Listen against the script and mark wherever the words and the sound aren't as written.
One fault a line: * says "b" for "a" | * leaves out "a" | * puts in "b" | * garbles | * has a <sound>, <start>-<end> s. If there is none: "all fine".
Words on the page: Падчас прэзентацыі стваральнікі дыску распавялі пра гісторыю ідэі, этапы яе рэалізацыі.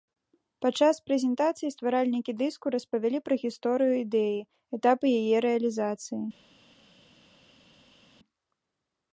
all fine